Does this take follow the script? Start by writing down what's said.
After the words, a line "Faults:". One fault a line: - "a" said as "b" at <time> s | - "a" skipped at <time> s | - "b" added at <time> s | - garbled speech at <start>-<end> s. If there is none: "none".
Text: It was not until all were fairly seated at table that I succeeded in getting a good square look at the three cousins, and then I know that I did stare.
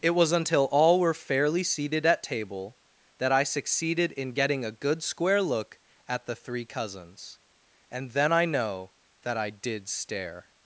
It was until all were fairly seated at table that I succeeded in getting a good square look at the three cousins, and then I know that I did stare.
Faults:
- "not" skipped at 0.3 s